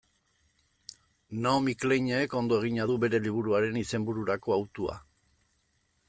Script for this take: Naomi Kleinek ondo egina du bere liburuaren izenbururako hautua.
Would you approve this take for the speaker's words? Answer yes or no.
yes